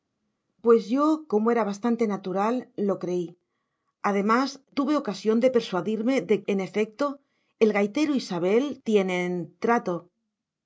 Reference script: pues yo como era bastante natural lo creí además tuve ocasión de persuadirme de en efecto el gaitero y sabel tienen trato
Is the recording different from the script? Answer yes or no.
no